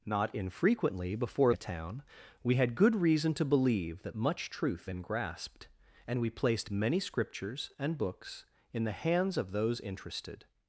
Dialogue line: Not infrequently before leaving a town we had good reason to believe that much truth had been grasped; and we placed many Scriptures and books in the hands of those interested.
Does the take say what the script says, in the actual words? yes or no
no